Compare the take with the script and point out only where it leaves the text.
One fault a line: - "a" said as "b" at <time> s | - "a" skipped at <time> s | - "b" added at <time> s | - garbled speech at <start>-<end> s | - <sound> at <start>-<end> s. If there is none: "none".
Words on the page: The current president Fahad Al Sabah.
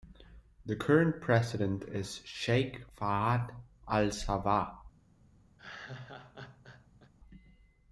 - "is Sheikh" added at 1.8 s
- laugh at 5.6-7.1 s